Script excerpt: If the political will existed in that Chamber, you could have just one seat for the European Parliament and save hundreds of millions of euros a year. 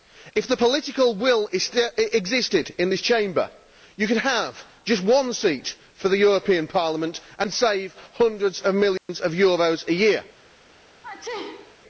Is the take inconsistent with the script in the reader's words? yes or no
yes